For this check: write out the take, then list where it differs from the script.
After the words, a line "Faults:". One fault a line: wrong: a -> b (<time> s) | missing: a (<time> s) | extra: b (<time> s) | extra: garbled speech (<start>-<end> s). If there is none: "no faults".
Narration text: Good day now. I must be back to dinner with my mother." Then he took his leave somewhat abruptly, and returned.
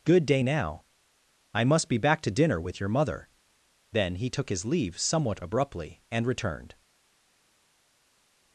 Good day now. I must be back to dinner with your mother." Then he took his leave somewhat abruptly, and returned.
Faults:
wrong: my -> your (2.8 s)